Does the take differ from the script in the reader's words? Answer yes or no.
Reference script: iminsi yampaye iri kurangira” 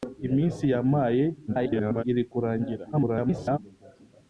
yes